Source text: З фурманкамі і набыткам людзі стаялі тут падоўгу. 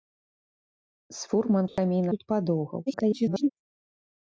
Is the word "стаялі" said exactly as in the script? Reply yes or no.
no